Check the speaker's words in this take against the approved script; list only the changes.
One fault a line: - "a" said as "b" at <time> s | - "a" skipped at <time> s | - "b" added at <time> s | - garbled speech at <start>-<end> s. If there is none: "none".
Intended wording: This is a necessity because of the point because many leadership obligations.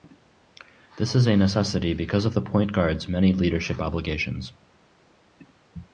- "because" said as "guard's" at 2.7 s